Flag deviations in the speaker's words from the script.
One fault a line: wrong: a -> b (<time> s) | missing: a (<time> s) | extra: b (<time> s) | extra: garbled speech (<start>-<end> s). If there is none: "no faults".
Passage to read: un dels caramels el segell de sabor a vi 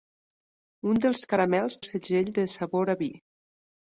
no faults